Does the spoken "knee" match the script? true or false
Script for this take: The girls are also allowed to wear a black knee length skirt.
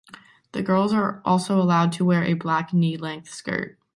true